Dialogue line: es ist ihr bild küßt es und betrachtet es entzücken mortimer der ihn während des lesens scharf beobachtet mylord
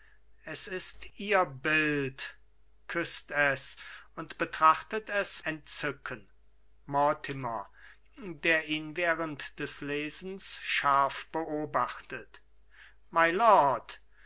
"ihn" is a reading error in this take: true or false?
false